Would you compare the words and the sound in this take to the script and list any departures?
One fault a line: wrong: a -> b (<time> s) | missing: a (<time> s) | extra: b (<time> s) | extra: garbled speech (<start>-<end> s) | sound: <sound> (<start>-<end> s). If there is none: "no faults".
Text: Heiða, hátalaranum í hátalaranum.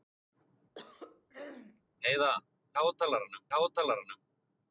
sound: throat clearing (0.8-1.8 s)